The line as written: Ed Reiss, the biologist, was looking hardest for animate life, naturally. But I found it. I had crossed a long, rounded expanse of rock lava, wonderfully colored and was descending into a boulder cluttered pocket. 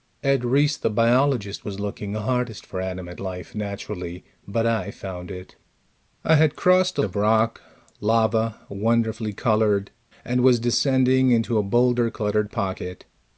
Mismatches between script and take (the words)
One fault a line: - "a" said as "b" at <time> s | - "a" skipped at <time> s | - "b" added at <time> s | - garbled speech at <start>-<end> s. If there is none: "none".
- "long rounded expanse" skipped at 7.0 s